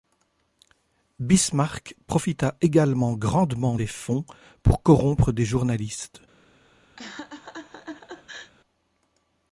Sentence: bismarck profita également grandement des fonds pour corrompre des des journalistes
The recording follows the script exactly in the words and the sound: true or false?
false